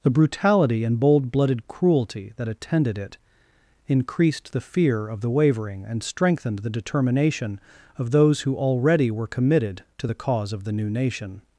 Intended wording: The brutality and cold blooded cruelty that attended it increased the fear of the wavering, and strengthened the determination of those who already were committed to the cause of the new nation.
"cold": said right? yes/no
no